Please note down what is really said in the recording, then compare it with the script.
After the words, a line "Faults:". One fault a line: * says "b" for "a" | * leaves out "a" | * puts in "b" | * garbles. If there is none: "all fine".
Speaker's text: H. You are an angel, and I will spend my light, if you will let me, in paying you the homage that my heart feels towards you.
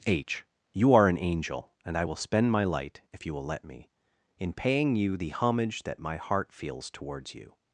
H. You are an angel, and I will spend my light, if you will let me, in paying you the homage that my heart feels towards you.
Faults:
all fine